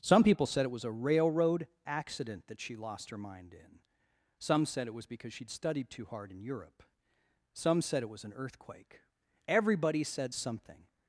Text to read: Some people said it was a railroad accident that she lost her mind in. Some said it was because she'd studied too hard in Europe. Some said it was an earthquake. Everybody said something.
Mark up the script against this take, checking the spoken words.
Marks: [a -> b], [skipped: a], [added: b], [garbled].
Some people said it was a railroad accident that she lost her mind in. Some said it was because she'd studied too hard in Europe. Some said it was an earthquake. Everybody said something.